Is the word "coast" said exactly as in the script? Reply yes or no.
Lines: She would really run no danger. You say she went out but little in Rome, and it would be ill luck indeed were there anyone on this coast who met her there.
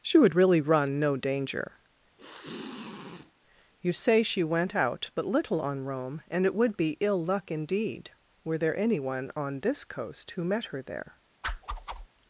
yes